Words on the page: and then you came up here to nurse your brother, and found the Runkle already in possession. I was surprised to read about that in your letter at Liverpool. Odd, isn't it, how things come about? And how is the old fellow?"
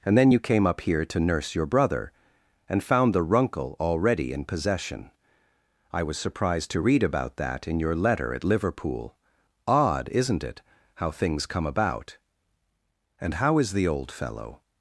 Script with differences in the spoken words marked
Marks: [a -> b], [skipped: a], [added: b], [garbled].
and then you came up here to nurse your brother, and found the Runkle already in possession. I was surprised to read about that in your letter at Liverpool. Odd, isn't it, how things come about? And how is the old fellow?"